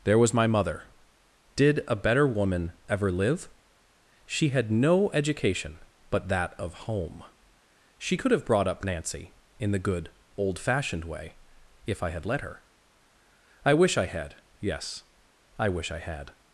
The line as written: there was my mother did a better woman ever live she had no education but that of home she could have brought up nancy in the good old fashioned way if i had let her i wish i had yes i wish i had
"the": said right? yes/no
yes